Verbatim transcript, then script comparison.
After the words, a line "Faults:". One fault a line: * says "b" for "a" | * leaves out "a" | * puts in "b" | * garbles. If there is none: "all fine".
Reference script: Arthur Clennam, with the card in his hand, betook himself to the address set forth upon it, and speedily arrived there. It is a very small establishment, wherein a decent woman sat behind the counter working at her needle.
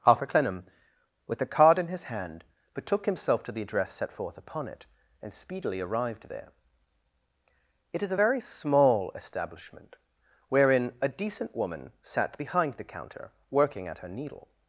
Arthur Clennam, with the card in his hand, betook himself to the address set forth upon it, and speedily arrived there. It is a very small establishment, wherein a decent woman sat behind the counter working at her needle.
Faults:
all fine